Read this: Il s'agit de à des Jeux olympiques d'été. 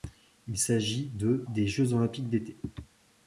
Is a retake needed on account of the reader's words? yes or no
yes